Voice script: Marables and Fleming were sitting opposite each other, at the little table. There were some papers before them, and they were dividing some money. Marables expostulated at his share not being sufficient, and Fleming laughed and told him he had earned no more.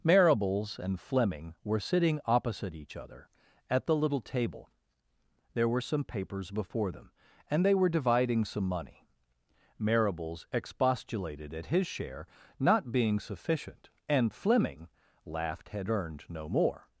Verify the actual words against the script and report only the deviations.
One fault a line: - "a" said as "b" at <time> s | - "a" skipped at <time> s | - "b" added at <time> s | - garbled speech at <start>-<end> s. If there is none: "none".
- "and told him he" skipped at 15.7 s